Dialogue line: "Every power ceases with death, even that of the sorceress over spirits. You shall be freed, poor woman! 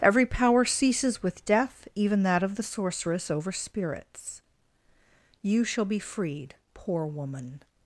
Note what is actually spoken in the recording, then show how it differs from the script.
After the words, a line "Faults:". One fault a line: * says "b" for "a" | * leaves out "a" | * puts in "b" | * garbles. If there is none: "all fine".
"Every power ceases with death, even that of the sorceress over spirits. You shall be freed, poor woman!
Faults:
all fine